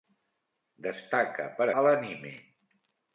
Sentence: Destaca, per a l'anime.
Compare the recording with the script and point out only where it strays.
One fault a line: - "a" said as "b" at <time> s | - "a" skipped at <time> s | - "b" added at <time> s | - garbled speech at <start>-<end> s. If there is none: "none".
none